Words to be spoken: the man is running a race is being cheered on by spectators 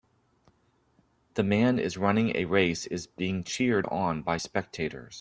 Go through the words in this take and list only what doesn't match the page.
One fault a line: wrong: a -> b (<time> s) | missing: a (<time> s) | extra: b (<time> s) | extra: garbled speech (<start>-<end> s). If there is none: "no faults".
no faults